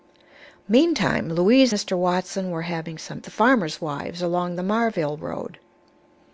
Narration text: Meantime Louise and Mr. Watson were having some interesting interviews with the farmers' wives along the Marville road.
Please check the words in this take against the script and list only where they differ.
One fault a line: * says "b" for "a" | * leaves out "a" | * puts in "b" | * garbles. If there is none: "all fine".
* leaves out "and"
* leaves out "interesting interviews with"